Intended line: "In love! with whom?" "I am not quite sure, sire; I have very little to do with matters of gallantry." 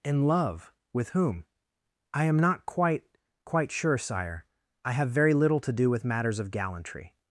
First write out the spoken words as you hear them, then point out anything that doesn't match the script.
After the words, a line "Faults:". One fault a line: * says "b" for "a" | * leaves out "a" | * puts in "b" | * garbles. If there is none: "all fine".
"In love! with whom?" "I am not quite quite sure, sire; I have very little to do with matters of gallantry."
Faults:
* puts in "quite"